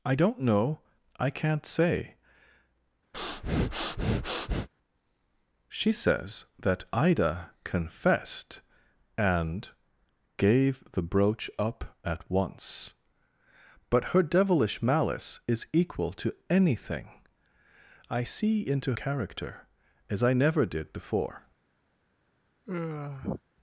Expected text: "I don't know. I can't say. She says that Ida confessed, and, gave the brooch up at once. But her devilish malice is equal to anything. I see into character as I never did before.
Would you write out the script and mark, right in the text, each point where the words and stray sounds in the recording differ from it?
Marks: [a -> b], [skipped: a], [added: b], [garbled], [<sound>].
"I don't know. I can't say. [breath] She says that Ida confessed, and, gave the brooch up at once. But her devilish malice is equal to anything. I see into character as I never did before. [sigh]